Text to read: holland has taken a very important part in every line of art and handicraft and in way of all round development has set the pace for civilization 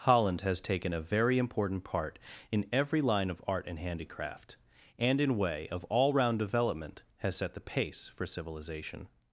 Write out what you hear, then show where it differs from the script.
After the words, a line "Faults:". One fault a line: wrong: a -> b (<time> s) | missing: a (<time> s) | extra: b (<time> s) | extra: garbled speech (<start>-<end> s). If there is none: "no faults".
holland has taken a very important part in every line of art and handicraft and in way of all round development has set the pace for civilization
Faults:
no faults